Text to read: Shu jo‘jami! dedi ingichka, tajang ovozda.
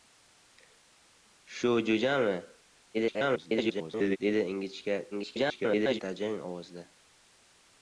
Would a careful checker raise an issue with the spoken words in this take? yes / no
yes